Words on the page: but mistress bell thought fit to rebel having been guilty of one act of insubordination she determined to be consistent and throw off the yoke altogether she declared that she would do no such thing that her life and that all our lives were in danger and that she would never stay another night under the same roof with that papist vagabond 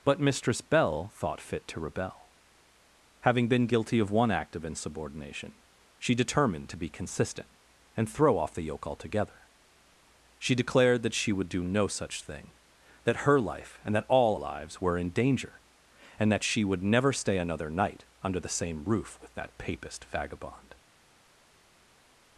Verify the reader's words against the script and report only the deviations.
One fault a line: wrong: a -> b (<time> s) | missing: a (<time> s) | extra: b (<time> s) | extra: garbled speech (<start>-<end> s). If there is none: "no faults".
missing: our (14.4 s)